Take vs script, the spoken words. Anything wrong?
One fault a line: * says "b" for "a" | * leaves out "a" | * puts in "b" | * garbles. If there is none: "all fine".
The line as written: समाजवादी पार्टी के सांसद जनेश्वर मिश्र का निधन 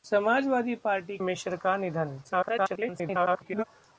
* leaves out "के सांसद जनेश्वर"
* garbles